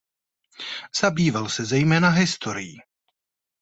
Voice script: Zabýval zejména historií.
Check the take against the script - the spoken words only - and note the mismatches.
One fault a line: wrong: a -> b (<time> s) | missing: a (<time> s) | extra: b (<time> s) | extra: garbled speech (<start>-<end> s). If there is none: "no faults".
extra: se (1.5 s)